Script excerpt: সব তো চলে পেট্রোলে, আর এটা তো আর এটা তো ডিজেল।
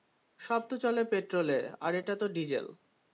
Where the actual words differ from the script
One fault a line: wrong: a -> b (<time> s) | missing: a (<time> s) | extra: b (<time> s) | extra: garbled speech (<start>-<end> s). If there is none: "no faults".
missing: আর এটা তো (2.3 s)